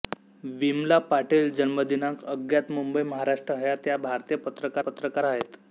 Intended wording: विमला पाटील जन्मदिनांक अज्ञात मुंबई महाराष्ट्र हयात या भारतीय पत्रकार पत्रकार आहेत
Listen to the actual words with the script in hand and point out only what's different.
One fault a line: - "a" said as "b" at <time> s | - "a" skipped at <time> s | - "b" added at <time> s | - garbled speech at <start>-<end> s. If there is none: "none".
none